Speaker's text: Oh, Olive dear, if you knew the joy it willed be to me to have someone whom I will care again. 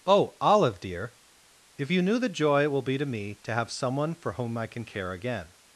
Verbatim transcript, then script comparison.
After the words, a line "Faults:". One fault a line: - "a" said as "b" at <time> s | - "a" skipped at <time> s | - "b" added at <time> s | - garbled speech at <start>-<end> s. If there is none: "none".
Oh, Olive dear, if you knew the joy it will be to me to have someone for whom I can care again.
Faults:
- "willed" said as "will" at 2.7 s
- "for" added at 4.2 s
- "will" said as "can" at 4.7 s